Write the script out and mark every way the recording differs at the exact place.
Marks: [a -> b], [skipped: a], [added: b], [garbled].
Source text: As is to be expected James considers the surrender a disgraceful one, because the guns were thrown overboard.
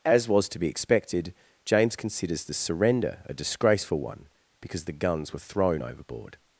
As [is -> was] to be expected James considers the surrender a disgraceful one, because the guns were thrown overboard.